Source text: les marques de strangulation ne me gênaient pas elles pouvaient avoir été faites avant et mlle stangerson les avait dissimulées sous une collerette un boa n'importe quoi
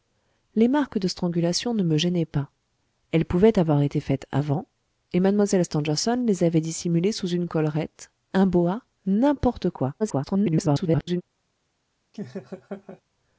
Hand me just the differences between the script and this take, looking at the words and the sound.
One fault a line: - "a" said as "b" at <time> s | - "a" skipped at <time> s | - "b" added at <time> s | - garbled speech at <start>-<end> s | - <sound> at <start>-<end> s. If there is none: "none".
- garbled speech at 10.0-11.2 s
- laugh at 12.1-13.0 s